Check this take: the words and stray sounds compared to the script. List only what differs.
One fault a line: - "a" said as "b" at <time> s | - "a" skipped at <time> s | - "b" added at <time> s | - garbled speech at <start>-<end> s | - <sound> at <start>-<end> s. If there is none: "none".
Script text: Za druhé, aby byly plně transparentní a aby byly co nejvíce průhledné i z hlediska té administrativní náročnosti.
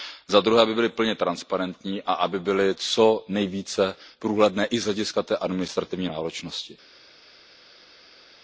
none